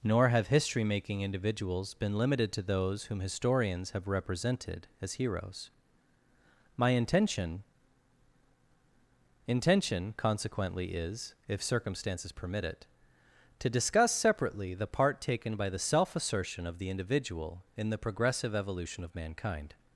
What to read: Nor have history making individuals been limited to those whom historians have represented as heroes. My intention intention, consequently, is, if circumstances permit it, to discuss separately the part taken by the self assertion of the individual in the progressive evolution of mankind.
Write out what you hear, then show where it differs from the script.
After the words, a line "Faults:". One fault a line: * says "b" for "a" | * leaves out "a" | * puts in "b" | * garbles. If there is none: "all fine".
Nor have history making individuals been limited to those whom historians have represented as heroes. My intention intention, consequently, is, if circumstances permit it, to discuss separately the part taken by the self assertion of the individual in the progressive evolution of mankind.
Faults:
all fine